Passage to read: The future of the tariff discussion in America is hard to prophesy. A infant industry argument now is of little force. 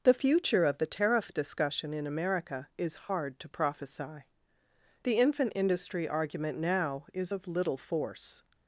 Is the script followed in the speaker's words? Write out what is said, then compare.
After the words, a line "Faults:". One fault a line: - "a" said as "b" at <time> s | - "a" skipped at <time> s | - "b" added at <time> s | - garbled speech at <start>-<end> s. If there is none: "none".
The future of the tariff discussion in America is hard to prophesy. The infant industry argument now is of little force.
Faults:
- "A" said as "The" at 5.0 s